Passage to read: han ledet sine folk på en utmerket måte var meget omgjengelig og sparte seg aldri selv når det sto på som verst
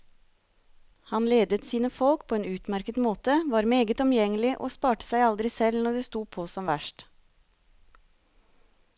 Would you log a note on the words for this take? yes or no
no